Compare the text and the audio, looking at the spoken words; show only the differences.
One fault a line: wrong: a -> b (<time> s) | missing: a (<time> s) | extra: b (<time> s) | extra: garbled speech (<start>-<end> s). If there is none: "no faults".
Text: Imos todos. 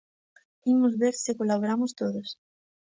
extra: ver se colaboramos (1.0 s)